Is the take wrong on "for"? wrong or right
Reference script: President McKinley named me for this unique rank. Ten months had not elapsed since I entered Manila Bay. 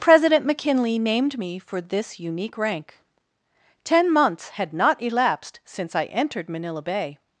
right